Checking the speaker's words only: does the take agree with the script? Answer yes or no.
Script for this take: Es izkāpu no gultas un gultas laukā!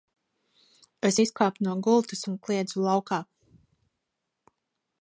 no